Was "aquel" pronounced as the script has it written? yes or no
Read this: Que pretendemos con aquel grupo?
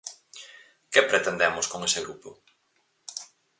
no